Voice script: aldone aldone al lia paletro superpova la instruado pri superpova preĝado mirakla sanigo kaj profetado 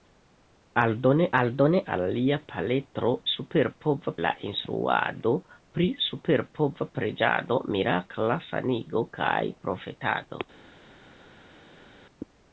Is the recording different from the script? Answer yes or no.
no